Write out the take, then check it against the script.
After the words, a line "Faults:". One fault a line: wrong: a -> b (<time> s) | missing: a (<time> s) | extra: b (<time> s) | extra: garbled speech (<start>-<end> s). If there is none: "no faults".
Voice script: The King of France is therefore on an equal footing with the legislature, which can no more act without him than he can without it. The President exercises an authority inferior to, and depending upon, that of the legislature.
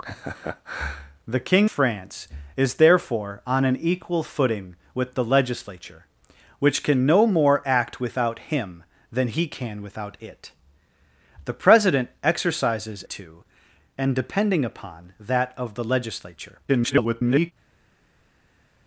The King France is therefore on an equal footing with the legislature, which can no more act without him than he can without it. The President exercises to, and depending upon, that of the legislature. [garbled]
Faults:
missing: of (1.7 s)
missing: an authority inferior (13.0 s)
extra: garbled speech (16.7-17.5 s)